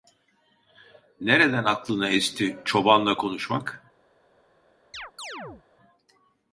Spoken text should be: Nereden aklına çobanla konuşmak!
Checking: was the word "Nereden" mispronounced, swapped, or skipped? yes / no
no